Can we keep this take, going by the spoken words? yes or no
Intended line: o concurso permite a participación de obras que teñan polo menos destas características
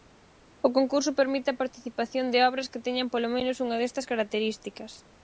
no